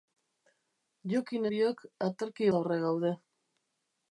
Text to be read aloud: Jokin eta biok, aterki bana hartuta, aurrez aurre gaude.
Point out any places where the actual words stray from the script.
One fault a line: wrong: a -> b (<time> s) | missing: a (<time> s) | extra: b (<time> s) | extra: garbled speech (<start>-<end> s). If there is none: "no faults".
missing: eta (1.4 s)
missing: bana hartuta aurrez (2.5 s)